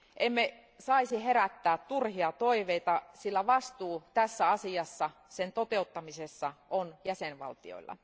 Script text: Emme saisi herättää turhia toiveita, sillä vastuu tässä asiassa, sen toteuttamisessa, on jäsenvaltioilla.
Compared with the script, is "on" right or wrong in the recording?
right